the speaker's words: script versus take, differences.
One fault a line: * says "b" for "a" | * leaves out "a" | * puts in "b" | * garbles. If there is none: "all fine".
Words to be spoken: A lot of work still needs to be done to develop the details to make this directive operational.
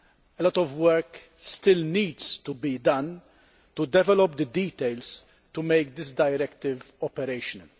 all fine